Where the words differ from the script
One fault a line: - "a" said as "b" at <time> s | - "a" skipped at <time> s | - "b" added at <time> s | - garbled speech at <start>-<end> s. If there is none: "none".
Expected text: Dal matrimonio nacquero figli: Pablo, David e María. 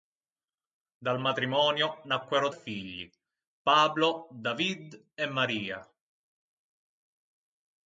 none